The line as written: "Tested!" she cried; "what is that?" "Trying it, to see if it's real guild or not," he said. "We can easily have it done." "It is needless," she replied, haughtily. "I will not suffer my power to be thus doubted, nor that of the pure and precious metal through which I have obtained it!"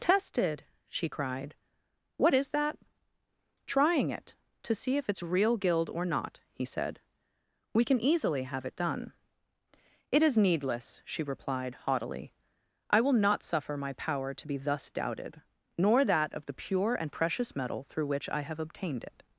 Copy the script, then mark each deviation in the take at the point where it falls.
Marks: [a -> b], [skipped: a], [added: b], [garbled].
"Tested!" she cried; "what is that?" "Trying it, to see if it's real guild or not," he said. "We can easily have it done." "It is needless," she replied, haughtily. "I will not suffer my power to be thus doubted, nor that of the pure and precious metal through which I have obtained it!"